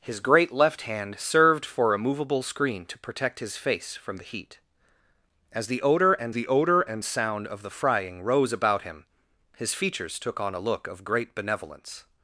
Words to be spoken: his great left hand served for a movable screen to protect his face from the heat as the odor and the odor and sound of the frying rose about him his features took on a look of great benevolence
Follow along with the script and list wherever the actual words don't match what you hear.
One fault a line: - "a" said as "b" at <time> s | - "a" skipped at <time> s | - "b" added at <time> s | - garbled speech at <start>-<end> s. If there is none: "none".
none